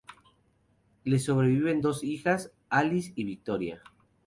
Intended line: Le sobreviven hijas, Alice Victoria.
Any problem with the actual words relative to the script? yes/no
yes